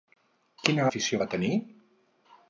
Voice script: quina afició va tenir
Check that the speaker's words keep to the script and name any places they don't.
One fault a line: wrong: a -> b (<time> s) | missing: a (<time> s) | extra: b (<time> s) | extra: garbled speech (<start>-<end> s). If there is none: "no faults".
no faults